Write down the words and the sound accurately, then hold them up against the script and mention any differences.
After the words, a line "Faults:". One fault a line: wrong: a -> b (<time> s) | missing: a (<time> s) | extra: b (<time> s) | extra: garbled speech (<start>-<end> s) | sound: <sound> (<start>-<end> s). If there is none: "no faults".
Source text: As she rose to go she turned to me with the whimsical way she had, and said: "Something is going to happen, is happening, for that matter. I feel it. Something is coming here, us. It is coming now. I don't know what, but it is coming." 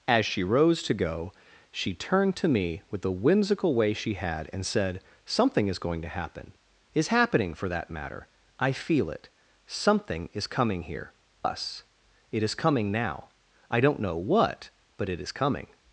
As she rose to go she turned to me with the whimsical way she had, and said: "Something is going to happen, is happening, for that matter. I feel it. Something is coming here, us. It is coming now. I don't know what, but it is coming."
Faults:
no faults